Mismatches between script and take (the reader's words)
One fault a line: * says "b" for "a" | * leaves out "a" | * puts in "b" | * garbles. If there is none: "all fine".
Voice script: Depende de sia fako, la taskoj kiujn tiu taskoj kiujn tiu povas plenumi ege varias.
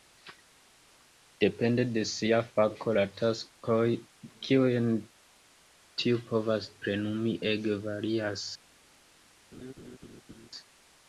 * leaves out "taskoj kiujn tiu"